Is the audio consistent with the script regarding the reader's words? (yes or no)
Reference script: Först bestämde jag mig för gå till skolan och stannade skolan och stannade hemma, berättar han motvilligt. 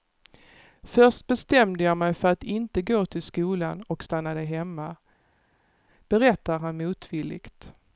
no